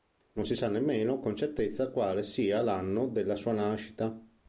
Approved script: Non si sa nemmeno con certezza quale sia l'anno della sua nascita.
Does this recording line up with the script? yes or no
yes